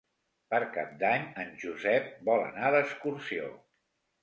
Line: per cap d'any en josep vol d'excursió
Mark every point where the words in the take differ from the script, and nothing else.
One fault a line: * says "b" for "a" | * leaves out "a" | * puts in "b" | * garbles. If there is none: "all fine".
* puts in "anar"